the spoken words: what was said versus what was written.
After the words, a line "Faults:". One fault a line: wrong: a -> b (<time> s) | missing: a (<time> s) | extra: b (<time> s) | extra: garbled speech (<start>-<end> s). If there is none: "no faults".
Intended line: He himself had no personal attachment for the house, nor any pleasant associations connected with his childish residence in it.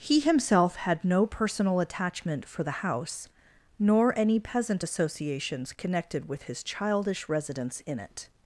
He himself had no personal attachment for the house, nor any peasant associations connected with his childish residence in it.
Faults:
wrong: pleasant -> peasant (4.4 s)